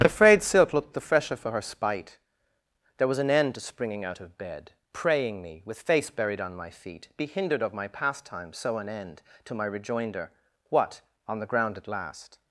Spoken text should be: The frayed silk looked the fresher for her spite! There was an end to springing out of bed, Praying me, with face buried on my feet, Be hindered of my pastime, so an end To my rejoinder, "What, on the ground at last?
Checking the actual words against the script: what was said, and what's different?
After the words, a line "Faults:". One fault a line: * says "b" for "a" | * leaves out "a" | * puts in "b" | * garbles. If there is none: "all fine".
The frayed silk looked the fresher for her spite! There was an end to springing out of bed, Praying me, with face buried on my feet, Be hindered of my pastime, so an end To my rejoinder, "What, on the ground at last?
Faults:
all fine